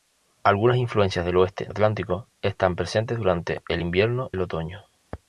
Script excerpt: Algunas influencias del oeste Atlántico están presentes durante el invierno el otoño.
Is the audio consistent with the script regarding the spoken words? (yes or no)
yes